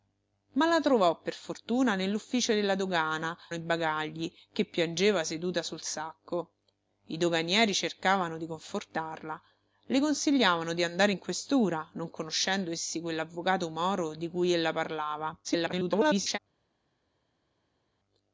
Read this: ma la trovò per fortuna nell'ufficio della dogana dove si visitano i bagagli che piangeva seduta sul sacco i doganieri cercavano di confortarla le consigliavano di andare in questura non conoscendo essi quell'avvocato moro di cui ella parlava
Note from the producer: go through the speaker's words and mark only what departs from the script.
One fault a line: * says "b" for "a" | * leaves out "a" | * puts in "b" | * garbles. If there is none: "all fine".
* leaves out "dove si visitano"
* garbles